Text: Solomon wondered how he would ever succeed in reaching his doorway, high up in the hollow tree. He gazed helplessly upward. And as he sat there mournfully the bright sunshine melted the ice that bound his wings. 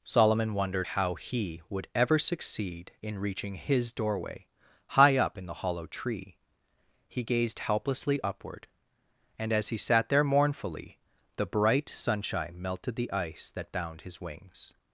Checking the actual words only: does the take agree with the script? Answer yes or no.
yes